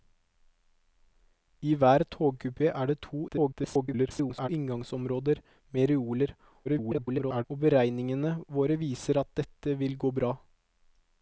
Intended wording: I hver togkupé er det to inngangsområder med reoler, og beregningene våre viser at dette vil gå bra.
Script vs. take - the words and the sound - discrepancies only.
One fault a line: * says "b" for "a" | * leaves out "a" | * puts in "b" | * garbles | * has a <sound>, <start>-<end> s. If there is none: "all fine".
* garbles
* garbles